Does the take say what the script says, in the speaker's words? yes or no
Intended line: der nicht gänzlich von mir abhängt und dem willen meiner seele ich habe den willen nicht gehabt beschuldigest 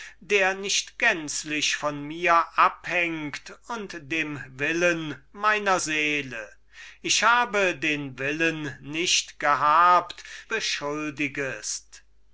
yes